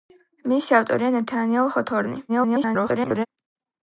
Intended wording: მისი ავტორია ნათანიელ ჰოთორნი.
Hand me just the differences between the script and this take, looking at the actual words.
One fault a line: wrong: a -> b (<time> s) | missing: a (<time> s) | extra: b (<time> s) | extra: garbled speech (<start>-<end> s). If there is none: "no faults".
extra: garbled speech (2.3-3.3 s)